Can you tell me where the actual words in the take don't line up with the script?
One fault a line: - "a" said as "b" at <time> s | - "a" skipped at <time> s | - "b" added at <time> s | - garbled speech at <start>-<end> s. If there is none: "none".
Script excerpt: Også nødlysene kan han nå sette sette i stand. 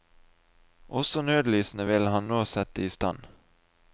- "kan" said as "vil" at 1.9 s
- "sette" skipped at 2.9 s